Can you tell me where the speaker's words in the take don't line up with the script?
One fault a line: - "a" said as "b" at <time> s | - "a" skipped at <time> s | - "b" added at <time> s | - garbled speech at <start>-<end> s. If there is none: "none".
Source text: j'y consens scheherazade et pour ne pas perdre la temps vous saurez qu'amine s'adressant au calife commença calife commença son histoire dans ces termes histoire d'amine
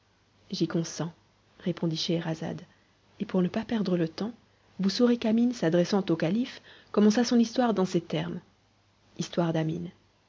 - "répondit" added at 1.6 s
- "la" said as "le" at 4.0 s
- "calife commença" skipped at 7.2 s